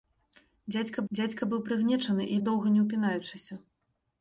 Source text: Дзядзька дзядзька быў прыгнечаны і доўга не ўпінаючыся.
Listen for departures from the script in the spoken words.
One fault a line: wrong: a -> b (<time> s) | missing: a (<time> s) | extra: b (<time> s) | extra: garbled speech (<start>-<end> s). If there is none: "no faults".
no faults